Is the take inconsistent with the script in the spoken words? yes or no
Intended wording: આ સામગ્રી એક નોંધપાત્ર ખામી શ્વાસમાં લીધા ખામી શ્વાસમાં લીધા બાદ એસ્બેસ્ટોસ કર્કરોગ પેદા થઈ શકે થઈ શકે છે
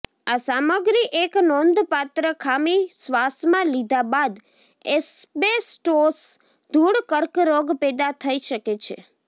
yes